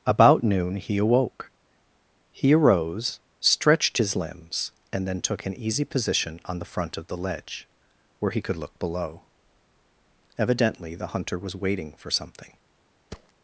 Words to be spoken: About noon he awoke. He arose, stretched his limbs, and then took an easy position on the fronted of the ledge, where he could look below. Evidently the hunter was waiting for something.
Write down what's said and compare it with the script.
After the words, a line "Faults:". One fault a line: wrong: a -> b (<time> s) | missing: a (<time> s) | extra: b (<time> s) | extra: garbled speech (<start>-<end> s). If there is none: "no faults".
About noon he awoke. He arose, stretched his limbs, and then took an easy position on the front of the ledge, where he could look below. Evidently the hunter was waiting for something.
Faults:
wrong: fronted -> front (6.6 s)